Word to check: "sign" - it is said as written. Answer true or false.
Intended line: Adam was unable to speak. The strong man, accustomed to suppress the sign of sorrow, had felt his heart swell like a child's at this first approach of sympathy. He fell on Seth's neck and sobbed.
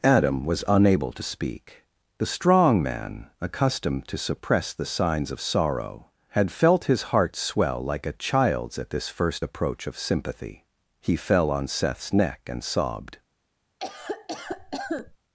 false